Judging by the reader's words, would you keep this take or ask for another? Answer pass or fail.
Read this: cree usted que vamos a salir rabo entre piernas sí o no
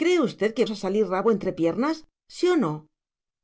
fail